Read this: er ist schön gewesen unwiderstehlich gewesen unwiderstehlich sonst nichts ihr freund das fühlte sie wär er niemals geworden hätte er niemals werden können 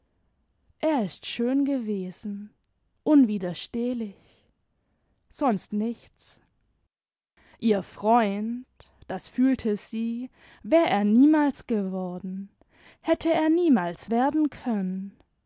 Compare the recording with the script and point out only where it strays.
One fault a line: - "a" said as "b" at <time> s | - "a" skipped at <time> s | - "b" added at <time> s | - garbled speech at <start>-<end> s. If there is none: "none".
- "gewesen unwiderstehlich" skipped at 4.2 s